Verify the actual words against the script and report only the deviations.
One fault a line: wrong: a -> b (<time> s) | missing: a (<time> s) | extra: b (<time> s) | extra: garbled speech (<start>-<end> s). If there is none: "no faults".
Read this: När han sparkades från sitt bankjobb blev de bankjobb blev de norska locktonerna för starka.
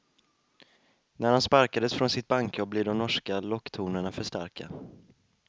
missing: bankjobb blev de (3.0 s)